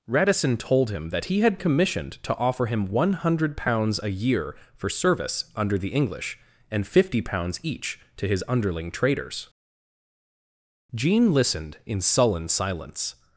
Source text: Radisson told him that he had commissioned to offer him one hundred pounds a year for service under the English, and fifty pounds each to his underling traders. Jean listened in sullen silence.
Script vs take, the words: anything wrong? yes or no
no